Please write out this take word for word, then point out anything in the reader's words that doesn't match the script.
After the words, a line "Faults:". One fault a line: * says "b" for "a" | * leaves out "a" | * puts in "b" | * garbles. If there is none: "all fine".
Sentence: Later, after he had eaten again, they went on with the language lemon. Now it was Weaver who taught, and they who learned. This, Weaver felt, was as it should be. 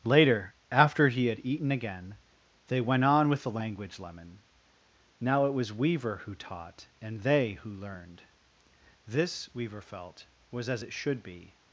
Later, after he had eaten again, they went on with the language lemon. Now it was Weaver who taught, and they who learned. This, Weaver felt, was as it should be.
Faults:
all fine